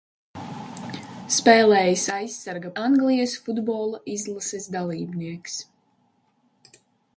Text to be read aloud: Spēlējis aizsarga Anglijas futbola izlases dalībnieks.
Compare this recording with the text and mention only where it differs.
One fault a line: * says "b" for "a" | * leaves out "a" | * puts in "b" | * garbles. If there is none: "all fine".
all fine